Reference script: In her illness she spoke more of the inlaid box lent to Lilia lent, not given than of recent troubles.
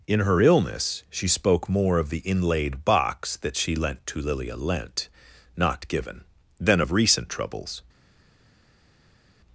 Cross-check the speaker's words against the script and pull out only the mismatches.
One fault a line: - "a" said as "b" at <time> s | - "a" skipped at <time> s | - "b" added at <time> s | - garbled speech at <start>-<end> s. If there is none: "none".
- "that she" added at 3.4 s